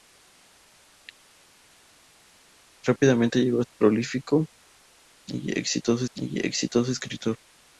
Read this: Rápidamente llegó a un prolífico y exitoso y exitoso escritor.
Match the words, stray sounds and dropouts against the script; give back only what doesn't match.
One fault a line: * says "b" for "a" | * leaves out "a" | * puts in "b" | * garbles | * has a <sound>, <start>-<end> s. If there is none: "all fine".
all fine